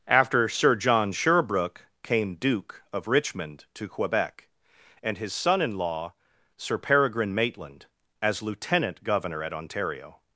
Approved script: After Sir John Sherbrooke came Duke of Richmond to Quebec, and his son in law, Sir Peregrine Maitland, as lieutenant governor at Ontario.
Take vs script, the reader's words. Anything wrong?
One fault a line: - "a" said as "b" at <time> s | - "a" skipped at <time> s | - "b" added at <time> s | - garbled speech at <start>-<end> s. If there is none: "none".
none